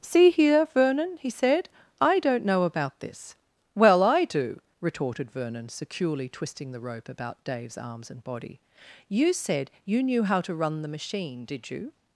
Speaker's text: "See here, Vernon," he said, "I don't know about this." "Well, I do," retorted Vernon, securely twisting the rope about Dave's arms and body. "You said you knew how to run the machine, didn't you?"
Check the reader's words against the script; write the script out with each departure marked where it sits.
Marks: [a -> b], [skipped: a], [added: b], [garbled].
"See here, Vernon," he said, "I don't know about this." "Well, I do," retorted Vernon, securely twisting the rope about Dave's arms and body. "You said you knew how to run the machine, [didn't -> did] you?"